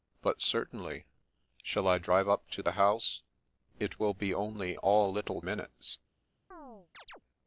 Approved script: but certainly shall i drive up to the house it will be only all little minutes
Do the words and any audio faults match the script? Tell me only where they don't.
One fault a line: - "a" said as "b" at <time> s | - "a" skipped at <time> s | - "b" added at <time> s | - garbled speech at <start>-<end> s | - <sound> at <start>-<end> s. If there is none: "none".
- chirp at 6.5-7.2 s